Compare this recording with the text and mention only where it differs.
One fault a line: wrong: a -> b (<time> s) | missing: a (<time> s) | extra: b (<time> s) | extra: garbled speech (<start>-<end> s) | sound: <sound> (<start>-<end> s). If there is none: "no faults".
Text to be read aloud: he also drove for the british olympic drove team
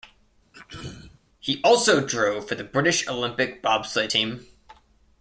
sound: throat clearing (0.5-1.2 s)
wrong: drove -> bobsleigh (3.6 s)